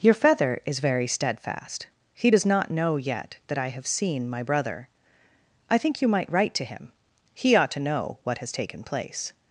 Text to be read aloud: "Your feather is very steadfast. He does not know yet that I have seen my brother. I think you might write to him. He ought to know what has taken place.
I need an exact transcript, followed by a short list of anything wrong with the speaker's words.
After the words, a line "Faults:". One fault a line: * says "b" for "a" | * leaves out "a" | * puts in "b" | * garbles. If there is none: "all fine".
"Your feather is very steadfast. He does not know yet that I have seen my brother. I think you might write to him. He ought to know what has taken place.
Faults:
all fine